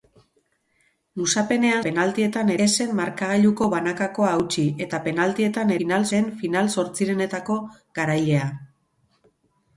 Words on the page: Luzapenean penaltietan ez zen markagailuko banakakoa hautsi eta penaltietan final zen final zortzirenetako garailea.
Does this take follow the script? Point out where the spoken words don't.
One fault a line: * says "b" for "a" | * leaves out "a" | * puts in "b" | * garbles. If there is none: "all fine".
all fine